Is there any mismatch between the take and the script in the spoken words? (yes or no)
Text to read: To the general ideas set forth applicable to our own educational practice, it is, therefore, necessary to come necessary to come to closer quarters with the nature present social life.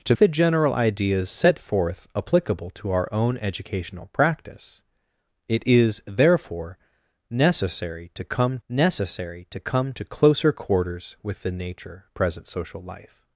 no